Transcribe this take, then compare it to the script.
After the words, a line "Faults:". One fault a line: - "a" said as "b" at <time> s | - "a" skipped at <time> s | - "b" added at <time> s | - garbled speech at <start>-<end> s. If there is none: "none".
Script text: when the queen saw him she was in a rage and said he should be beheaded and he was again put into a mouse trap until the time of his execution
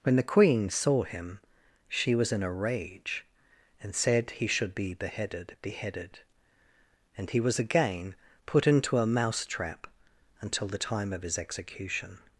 when the queen saw him she was in a rage and said he should be beheaded beheaded and he was again put into a mouse trap until the time of his execution
Faults:
- "beheaded" added at 5.6 s